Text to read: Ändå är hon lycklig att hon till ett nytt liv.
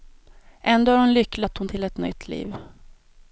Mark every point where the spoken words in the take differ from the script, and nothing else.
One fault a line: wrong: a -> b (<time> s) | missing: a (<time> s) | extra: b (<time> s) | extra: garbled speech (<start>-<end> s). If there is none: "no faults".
no faults